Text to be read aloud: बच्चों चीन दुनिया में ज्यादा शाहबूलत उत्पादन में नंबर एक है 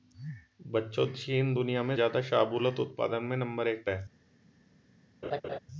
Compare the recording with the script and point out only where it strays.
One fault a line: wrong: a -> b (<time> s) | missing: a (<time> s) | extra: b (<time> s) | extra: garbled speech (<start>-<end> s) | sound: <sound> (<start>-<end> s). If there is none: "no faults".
sound: laugh (5.2-5.6 s)